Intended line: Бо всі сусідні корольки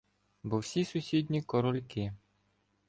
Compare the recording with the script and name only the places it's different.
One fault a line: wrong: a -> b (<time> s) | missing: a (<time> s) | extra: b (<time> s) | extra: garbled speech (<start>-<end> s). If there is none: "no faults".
no faults